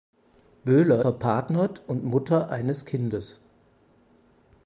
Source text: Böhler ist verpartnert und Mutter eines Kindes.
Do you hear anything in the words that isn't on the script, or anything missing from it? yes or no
yes